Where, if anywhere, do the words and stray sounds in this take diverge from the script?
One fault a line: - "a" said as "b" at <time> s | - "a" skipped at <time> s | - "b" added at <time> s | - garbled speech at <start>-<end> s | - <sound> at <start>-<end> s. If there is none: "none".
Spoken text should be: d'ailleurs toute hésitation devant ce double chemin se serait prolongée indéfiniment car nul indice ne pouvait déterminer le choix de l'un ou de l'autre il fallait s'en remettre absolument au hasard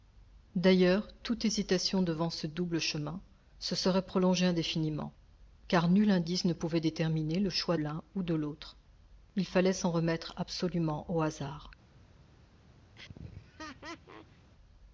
- "de" skipped at 7.8 s
- laugh at 13.0-14.5 s